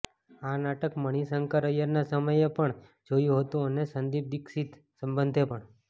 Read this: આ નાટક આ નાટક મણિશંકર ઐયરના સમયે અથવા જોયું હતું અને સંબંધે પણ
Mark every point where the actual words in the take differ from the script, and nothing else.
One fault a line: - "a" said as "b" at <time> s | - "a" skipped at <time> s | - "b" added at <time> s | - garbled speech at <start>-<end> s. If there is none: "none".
- "આ નાટક" skipped at 0.9 s
- "અથવા" said as "પણ" at 2.5 s
- "સંદીપ દીક્ષિત" added at 3.9 s